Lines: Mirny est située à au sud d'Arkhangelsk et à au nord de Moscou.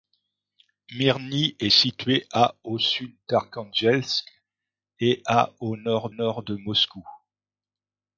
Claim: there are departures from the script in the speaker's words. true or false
true